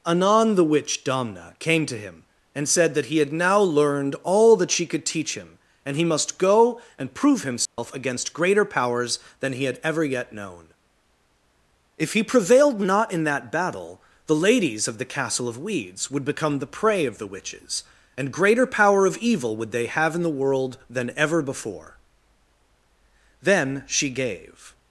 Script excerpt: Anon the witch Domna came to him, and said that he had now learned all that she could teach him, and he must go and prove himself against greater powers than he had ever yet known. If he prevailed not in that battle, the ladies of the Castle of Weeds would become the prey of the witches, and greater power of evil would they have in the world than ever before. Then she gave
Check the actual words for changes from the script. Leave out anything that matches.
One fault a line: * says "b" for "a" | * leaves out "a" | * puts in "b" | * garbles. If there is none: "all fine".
all fine